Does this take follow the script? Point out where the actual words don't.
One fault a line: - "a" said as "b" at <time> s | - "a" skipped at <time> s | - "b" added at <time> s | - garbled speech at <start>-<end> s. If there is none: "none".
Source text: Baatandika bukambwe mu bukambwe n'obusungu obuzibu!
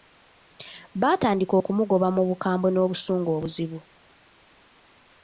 - "bukambwe" said as "okumugoba" at 1.6 s